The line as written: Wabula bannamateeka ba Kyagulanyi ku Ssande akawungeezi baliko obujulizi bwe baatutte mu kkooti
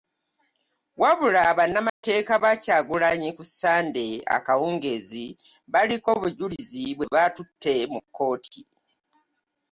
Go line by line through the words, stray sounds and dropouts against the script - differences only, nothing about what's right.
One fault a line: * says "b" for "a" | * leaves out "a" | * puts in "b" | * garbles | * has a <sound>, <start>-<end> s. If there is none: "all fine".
* has a dropout, 1.9-2.0 s